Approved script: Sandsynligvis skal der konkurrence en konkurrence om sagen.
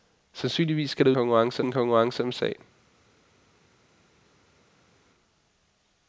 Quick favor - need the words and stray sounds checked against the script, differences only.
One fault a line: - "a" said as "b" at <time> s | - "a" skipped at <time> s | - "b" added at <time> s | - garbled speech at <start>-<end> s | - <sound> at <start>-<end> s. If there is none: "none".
none